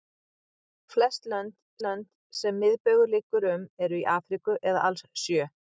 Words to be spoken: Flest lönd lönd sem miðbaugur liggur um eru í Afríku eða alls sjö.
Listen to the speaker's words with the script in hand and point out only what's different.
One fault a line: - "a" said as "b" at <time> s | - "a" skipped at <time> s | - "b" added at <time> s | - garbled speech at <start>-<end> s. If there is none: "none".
none